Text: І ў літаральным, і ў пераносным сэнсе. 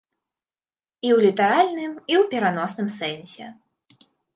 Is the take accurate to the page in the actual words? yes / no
yes